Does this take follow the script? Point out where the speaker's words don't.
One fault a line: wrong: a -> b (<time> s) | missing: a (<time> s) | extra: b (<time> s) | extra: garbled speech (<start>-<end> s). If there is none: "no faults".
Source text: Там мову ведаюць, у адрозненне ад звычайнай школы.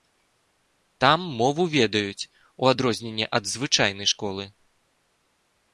no faults